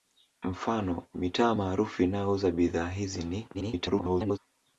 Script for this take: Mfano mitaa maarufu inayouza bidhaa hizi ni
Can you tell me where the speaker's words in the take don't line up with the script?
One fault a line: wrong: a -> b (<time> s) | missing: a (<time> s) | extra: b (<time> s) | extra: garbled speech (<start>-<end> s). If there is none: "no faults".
extra: garbled speech (3.5-4.4 s)